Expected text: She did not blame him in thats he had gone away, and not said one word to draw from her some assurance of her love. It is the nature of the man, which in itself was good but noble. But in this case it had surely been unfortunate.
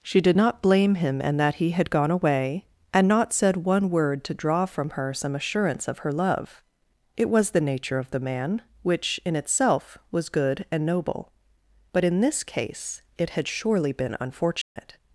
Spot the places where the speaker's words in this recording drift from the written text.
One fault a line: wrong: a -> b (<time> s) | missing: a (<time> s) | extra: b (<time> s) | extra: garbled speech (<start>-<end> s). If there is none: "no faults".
wrong: thats -> that (1.4 s)
wrong: is -> was (7.3 s)
wrong: but -> and (10.7 s)